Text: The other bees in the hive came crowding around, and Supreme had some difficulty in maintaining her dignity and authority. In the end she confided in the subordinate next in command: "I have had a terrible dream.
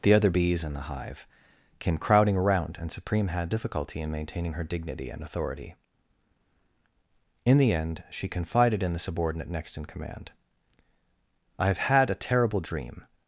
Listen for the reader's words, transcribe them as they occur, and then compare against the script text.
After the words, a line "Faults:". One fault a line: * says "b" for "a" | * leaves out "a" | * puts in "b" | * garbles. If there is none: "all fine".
The other bees in the hive came crowding around, and Supreme had difficulty in maintaining her dignity and authority. In the end she confided in the subordinate next in command: "I have had a terrible dream.
Faults:
* leaves out "some"